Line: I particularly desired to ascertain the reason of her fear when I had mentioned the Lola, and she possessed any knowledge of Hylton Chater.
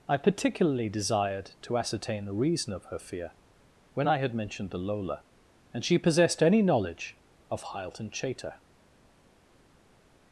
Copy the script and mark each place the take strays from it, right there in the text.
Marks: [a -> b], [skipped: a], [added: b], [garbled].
I particularly desired to ascertain the reason of her fear when I had mentioned the Lola, and she possessed any knowledge of Hylton Chater.